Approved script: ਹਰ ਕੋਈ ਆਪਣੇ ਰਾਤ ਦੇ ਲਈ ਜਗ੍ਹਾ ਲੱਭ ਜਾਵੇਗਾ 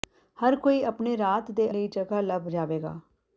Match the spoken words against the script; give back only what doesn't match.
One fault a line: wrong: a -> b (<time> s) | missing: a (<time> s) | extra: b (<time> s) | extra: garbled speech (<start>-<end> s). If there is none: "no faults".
no faults